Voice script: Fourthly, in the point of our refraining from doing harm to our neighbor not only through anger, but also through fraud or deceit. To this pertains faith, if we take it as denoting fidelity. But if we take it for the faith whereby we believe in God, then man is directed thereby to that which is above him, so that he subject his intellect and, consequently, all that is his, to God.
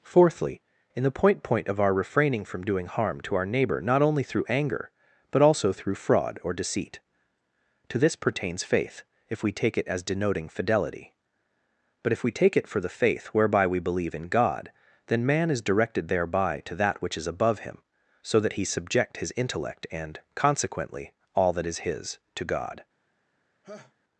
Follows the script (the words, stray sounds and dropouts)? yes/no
no